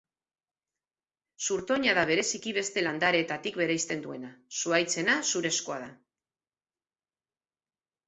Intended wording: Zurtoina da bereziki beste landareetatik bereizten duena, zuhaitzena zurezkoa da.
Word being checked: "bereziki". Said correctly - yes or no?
yes